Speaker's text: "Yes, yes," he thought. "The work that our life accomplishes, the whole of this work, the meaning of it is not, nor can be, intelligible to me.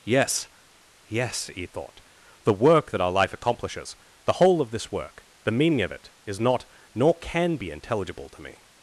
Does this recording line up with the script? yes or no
yes